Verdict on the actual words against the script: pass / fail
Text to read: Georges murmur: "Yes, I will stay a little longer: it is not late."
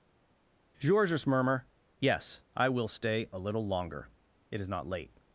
pass